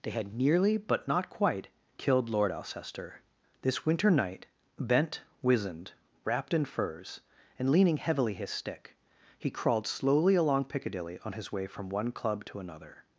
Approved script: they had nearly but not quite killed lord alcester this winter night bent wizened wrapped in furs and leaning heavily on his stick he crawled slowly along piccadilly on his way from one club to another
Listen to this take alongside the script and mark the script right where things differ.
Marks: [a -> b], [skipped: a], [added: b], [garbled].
they had nearly but not quite killed lord alcester this winter night bent wizened wrapped in furs and leaning heavily [skipped: on] his stick he crawled slowly along piccadilly on his way from one club to another